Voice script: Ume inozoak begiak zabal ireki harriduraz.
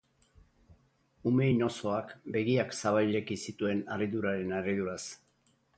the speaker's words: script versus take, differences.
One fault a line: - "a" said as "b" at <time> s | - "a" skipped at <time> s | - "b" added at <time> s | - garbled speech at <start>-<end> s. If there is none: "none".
- "zituen harriduraren" added at 3.5 s